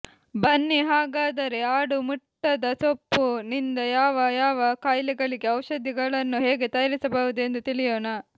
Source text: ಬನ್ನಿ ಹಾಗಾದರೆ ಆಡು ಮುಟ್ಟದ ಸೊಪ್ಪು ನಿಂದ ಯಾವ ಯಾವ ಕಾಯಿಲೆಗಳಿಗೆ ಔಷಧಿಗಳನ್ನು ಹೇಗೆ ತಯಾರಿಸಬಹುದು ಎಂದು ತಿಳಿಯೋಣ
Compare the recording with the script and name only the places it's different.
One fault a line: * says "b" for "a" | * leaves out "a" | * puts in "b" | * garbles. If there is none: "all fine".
all fine